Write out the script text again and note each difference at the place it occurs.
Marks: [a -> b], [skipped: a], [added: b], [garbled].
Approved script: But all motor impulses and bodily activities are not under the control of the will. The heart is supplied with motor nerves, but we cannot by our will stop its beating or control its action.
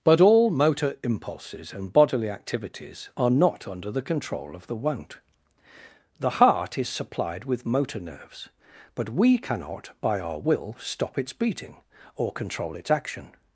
But all motor impulses and bodily activities are not under the control of the [will. -> won't] The heart is supplied with motor nerves, but we cannot by our will stop its beating or control its action.